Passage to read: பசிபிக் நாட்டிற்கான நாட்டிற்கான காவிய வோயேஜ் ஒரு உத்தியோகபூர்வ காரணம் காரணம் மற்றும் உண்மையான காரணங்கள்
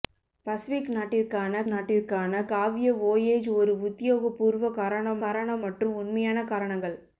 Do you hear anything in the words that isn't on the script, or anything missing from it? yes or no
no